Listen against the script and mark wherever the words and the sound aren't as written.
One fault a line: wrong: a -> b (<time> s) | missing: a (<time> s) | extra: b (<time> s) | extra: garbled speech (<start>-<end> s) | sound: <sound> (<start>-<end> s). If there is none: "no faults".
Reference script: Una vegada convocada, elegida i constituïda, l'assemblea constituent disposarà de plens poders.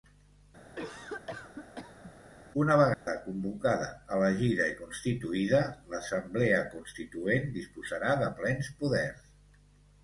sound: cough (0.7-2.1 s)
sound: dropout (2.9-3.1 s)